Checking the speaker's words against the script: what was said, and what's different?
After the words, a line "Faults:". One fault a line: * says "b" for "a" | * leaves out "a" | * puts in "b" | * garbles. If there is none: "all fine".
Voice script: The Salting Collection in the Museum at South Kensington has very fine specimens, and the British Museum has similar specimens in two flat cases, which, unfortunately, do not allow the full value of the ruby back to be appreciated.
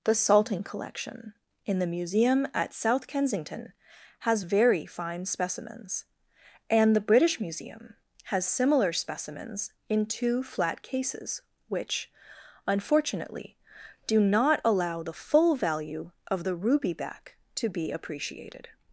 The Salting Collection in the Museum at South Kensington has very fine specimens, and the British Museum has similar specimens in two flat cases, which, unfortunately, do not allow the full value of the ruby back to be appreciated.
Faults:
all fine